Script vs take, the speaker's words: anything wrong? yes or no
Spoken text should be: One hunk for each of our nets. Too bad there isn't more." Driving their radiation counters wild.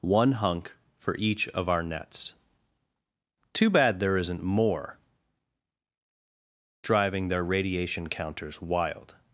no